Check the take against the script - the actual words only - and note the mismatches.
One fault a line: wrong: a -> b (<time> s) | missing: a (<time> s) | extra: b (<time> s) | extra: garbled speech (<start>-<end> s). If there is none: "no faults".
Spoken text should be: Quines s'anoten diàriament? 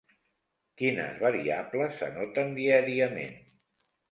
extra: variables (1.2 s)